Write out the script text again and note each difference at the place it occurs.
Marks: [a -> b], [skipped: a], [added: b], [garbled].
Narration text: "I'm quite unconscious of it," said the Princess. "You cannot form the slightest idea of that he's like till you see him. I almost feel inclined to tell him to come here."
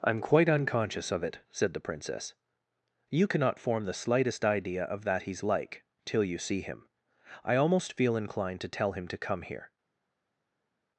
"I'm quite unconscious of it," said the Princess. "You cannot form the slightest idea of that he's like till you see him. I almost feel inclined to tell him to come here."